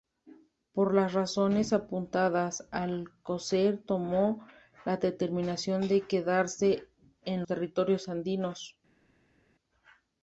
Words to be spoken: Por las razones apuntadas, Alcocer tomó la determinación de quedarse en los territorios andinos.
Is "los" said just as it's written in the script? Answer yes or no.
no